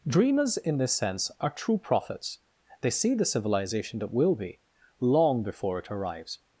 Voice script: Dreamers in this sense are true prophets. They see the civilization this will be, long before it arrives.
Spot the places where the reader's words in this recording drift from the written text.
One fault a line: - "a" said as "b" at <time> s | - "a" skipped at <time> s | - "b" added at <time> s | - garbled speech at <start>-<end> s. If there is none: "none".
- "this" said as "that" at 4.0 s